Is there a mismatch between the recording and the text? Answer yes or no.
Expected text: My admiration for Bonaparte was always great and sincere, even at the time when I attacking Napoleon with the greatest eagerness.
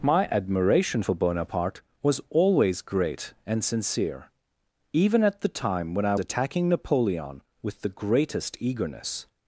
no